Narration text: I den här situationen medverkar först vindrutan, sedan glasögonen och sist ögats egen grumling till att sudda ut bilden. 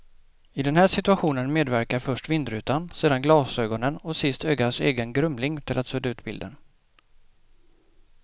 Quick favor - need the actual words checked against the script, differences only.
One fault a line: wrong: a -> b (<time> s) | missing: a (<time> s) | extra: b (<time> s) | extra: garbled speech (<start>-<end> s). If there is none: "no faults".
no faults